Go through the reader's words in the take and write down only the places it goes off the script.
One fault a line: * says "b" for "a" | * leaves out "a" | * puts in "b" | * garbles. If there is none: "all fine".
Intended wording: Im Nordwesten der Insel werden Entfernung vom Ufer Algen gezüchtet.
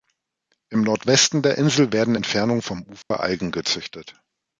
all fine